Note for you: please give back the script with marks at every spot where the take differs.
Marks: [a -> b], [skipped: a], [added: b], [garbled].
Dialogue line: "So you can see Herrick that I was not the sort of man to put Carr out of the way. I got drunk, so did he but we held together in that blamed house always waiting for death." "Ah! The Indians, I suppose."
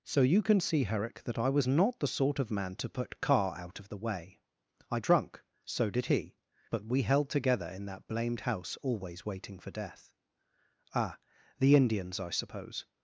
"So you can see Herrick that I was not the sort of man to put Carr out of the way. I [skipped: got] drunk, so did he but we held together in that blamed house always waiting for death." "Ah! The Indians, I suppose."